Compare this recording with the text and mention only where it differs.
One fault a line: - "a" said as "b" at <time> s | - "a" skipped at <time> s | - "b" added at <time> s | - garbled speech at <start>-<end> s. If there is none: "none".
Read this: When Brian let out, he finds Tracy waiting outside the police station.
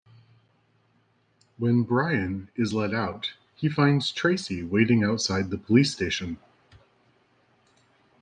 - "is" added at 2.5 s